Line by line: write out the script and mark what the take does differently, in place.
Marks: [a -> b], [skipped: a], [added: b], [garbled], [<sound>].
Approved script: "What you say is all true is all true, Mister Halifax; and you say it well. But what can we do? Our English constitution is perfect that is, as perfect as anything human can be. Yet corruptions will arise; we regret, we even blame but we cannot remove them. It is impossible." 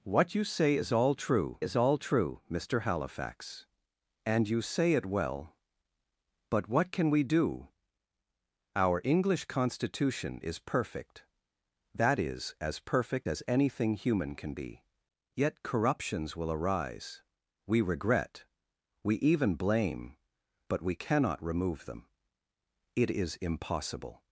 "What you say is all true is all true, Mister Halifax; and you say it well. But what can we do? Our English constitution is perfect that is, as perfect as anything human can be. Yet corruptions will arise; we regret, we even blame but we cannot remove them. It is impossible."